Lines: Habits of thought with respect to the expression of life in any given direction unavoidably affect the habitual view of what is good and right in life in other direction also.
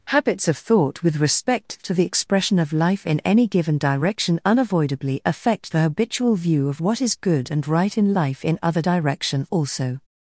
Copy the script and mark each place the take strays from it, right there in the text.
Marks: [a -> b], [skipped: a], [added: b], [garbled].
Habits of thought with respect to the expression of life in any given direction unavoidably affect the habitual view of what is good and right in life in other direction also.